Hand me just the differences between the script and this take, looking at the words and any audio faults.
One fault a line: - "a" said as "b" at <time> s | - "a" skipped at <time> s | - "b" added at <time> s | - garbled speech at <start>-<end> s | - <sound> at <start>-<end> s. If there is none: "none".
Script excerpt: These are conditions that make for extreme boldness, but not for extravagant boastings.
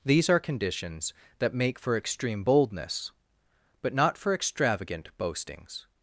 none